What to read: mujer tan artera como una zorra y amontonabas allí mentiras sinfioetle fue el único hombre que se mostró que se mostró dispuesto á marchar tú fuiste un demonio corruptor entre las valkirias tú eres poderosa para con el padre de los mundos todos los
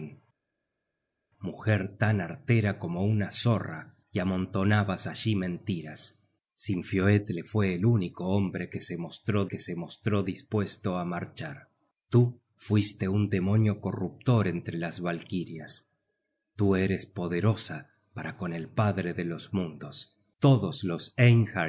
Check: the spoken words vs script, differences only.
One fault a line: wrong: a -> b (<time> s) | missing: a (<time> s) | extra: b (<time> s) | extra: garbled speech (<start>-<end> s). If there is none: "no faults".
no faults